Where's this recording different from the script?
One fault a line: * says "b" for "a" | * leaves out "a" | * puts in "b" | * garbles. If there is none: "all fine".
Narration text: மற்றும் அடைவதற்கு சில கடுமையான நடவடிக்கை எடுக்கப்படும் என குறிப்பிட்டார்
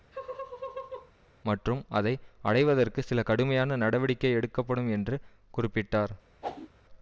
* puts in "அதை"
* says "என்று" for "என"